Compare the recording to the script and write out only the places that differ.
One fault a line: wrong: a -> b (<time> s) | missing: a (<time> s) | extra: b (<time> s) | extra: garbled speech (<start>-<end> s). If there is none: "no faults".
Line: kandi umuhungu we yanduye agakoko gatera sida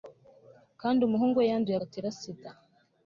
missing: agakoko (1.8 s)